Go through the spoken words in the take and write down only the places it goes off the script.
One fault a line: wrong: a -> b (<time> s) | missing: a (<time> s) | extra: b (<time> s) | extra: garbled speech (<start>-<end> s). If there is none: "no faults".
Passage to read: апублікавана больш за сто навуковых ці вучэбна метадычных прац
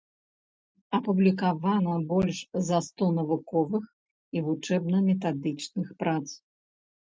wrong: ці -> і (4.4 s)